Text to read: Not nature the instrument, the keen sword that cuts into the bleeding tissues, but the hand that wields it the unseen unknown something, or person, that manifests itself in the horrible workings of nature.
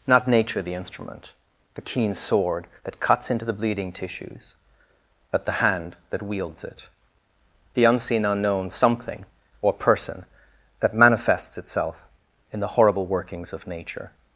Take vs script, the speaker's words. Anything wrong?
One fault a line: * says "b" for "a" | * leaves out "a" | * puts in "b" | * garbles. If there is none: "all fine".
all fine